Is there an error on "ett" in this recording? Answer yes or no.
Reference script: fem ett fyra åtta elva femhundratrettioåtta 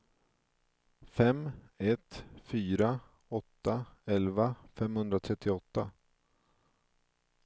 no